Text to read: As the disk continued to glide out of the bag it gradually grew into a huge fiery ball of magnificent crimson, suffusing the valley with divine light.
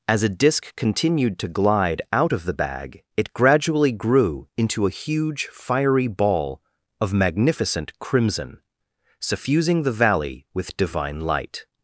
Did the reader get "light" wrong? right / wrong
right